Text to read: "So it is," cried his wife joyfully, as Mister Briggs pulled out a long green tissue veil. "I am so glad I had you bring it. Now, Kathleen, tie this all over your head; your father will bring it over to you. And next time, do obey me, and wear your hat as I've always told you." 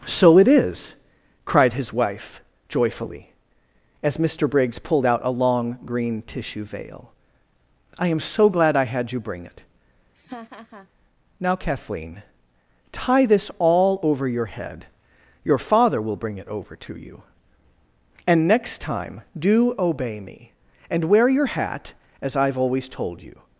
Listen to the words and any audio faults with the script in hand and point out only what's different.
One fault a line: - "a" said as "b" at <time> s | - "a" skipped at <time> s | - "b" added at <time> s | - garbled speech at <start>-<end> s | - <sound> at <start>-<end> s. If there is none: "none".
- laugh at 10.1-10.9 s